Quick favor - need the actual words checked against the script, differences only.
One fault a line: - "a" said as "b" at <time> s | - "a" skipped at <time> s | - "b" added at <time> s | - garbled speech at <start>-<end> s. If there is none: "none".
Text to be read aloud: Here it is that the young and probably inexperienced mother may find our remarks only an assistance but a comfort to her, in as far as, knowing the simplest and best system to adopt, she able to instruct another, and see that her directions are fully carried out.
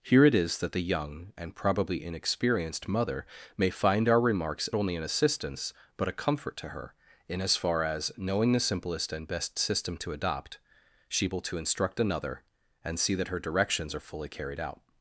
none